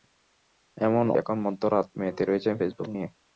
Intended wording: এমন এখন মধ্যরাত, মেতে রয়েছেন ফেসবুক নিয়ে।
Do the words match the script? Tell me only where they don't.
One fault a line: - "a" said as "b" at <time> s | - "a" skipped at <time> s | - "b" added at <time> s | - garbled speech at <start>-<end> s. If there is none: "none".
none